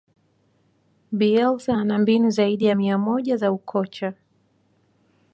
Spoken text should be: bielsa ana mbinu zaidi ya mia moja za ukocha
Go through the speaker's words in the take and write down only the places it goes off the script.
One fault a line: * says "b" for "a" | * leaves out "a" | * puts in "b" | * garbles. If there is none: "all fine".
all fine